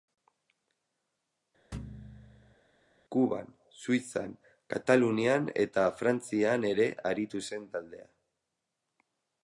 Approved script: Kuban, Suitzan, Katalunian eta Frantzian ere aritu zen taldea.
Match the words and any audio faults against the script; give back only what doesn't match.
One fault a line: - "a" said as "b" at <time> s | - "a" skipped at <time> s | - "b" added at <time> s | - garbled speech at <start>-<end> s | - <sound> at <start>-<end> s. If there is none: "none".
- thud at 1.7-2.6 s